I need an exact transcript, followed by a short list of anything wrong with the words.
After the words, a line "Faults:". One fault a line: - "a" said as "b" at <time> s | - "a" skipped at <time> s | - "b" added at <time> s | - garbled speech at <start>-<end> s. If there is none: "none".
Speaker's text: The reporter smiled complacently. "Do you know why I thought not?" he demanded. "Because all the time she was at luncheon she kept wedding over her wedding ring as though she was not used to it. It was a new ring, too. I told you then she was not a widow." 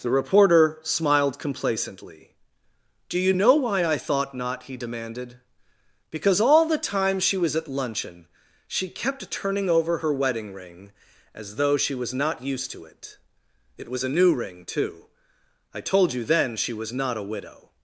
The reporter smiled complacently. "Do you know why I thought not?" he demanded. "Because all the time she was at luncheon she kept turning over her wedding ring as though she was not used to it. It was a new ring, too. I told you then she was not a widow."
Faults:
- "wedding" said as "turning" at 9.3 s